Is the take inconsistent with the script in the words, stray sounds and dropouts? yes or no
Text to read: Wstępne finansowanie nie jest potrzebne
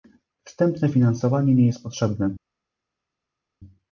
no